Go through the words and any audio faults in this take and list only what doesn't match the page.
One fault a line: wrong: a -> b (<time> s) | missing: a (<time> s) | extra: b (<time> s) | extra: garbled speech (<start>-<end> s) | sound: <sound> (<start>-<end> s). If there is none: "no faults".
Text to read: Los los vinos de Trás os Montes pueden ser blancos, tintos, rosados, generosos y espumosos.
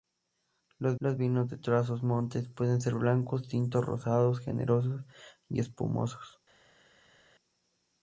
no faults